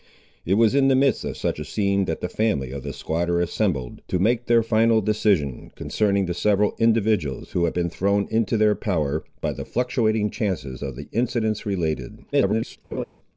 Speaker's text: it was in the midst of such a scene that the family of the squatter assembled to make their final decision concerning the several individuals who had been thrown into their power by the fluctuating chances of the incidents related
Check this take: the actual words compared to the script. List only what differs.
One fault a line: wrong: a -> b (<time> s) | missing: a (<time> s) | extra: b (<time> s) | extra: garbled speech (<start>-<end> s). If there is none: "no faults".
extra: garbled speech (12.3-12.8 s)